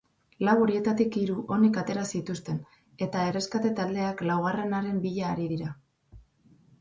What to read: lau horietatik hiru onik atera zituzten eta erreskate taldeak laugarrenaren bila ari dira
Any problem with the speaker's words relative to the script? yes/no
no